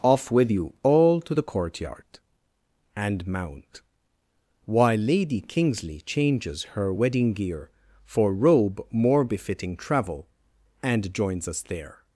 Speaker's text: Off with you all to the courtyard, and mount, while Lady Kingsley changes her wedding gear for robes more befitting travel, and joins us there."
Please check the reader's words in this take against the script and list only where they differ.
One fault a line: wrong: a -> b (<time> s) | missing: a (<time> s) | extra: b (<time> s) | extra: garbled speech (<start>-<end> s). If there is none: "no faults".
wrong: robes -> robe (8.3 s)